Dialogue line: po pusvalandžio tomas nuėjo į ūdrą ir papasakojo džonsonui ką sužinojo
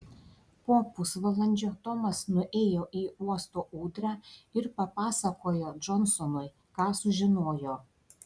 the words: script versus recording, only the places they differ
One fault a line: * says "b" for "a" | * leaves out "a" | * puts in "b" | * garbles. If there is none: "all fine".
* puts in "uosto"